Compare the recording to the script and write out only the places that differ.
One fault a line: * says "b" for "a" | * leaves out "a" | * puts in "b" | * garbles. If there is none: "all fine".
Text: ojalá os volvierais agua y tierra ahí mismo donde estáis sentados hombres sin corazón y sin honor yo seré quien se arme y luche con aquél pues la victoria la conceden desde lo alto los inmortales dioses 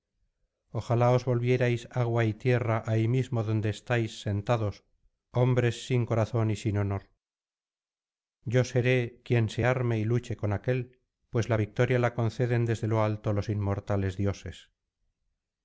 all fine